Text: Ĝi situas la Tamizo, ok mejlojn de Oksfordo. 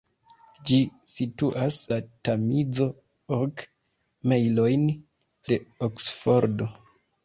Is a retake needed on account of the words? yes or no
no